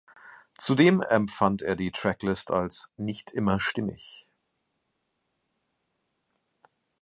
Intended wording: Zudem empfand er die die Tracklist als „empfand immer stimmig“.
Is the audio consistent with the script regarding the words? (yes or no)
no